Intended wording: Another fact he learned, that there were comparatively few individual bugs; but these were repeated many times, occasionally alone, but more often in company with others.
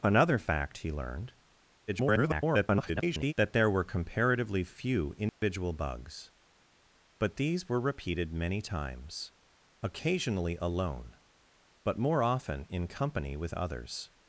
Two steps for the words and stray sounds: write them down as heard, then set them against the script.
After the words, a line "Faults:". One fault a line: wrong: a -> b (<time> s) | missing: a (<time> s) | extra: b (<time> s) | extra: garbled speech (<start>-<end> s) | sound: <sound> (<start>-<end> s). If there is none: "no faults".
Another fact he learned, [garbled] that there were comparatively few individual bugs; but these were repeated many times, occasionally alone, but more often in company with others.
Faults:
extra: garbled speech (1.9-3.3 s)
sound: dropout (5.3-5.4 s)